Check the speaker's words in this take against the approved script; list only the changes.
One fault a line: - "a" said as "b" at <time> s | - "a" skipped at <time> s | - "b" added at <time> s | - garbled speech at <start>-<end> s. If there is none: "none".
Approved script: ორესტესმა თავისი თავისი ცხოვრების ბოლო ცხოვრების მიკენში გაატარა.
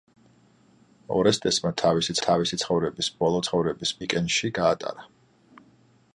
none